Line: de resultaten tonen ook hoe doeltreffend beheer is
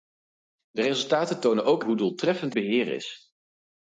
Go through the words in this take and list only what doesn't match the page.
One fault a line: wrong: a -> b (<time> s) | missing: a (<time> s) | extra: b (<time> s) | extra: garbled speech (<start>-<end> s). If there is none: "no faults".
no faults